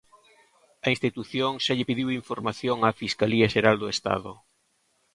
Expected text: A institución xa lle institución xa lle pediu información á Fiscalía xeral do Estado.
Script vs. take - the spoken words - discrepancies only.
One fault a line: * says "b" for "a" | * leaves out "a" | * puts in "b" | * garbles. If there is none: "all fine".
* leaves out "institución xa lle"